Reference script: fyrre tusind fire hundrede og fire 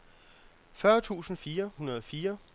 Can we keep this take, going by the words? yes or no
yes